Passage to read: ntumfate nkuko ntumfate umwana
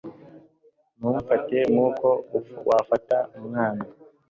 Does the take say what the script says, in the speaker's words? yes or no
no